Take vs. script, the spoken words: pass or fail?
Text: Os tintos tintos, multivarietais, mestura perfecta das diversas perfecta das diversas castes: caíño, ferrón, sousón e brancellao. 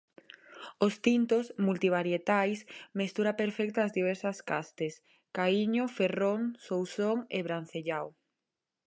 fail